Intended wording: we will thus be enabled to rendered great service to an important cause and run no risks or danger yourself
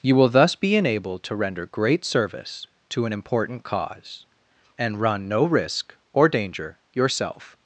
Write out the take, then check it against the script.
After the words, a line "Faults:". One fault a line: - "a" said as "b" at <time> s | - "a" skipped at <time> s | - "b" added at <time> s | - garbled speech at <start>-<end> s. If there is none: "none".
you will thus be enabled to render great service to an important cause and run no risk or danger yourself
Faults:
- "we" said as "you" at 0.0 s
- "rendered" said as "render" at 1.4 s
- "risks" said as "risk" at 5.5 s